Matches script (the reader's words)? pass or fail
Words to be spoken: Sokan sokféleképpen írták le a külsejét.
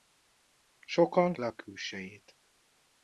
fail